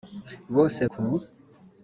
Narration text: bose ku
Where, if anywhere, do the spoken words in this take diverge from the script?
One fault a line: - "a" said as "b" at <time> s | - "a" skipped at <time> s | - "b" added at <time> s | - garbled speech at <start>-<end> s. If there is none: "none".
none